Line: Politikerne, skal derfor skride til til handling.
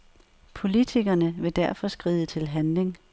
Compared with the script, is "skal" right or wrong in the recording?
wrong